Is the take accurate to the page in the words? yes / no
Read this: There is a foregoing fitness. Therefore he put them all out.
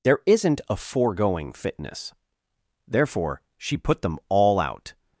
no